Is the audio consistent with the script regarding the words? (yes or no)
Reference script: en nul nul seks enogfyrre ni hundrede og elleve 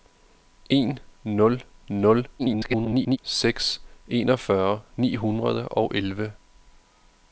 no